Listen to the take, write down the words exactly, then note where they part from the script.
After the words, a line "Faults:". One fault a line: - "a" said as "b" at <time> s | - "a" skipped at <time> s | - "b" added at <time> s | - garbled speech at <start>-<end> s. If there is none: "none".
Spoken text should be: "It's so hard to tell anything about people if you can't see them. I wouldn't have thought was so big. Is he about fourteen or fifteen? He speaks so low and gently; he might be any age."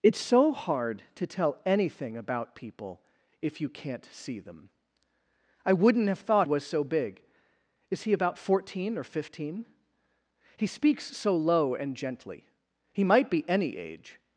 "It's so hard to tell anything about people if you can't see them. I wouldn't have thought was so big. Is he about fourteen or fifteen? He speaks so low and gently; he might be any age."
Faults:
none